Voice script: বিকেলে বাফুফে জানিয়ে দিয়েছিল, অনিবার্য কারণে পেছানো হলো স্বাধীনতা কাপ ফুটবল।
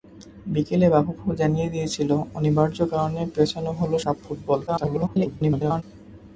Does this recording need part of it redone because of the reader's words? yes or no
yes